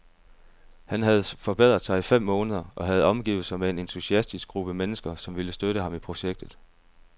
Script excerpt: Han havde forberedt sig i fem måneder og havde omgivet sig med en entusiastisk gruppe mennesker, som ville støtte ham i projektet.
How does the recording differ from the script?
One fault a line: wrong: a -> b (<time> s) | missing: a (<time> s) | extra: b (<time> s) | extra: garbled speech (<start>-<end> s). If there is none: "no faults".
no faults